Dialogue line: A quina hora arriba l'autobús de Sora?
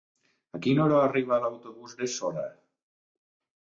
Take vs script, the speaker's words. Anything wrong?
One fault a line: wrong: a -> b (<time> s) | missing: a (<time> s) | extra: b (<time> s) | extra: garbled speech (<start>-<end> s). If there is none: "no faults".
no faults